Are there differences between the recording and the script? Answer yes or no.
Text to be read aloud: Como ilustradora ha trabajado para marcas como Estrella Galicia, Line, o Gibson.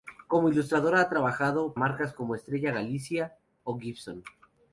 yes